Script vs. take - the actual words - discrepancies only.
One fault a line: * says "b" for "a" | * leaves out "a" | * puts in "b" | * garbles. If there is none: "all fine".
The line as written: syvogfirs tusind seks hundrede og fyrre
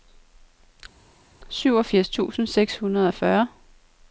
all fine